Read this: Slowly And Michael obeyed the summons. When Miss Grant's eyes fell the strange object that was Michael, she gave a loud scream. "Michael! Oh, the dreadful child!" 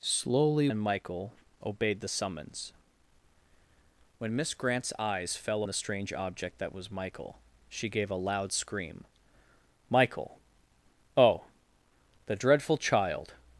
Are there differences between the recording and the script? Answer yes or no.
no